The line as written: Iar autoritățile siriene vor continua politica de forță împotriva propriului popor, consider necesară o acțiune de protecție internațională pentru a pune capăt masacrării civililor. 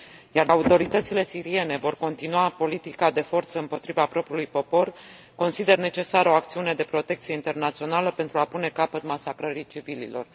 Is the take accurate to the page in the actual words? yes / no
yes